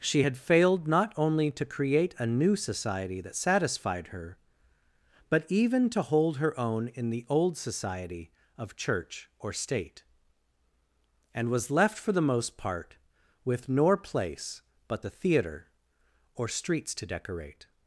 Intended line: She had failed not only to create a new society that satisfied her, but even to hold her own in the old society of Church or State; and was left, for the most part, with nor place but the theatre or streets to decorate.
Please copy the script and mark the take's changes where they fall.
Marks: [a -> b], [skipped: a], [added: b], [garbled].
She had failed not only to create a new society that satisfied her, but even to hold her own in the old society of Church or State; and was left, for the most part, with nor place but the theatre or streets to decorate.